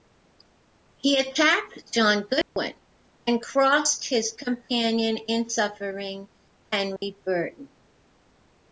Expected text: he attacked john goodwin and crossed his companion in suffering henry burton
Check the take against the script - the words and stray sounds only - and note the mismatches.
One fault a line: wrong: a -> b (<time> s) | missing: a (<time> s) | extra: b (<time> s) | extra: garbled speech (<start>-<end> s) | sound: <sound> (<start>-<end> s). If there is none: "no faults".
sound: dropout (2.4-2.6 s)
sound: dropout (7.0-7.0 s)